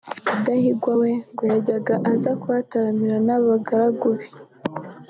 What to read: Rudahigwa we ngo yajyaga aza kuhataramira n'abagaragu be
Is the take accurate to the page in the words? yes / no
yes